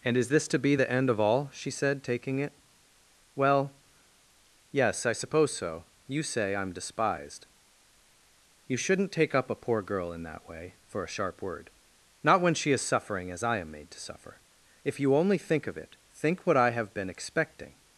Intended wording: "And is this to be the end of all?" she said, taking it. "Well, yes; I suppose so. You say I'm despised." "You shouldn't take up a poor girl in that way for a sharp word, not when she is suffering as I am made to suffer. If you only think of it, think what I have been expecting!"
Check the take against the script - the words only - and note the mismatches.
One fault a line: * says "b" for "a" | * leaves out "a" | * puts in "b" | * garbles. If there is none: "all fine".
all fine